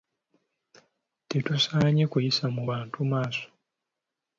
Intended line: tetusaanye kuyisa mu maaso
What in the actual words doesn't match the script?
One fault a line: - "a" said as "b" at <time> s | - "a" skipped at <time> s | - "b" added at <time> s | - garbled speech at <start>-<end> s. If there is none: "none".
- "bantu" added at 2.7 s